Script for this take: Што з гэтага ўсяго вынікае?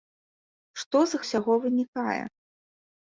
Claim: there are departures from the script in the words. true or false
true